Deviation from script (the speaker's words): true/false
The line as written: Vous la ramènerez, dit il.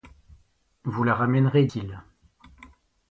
true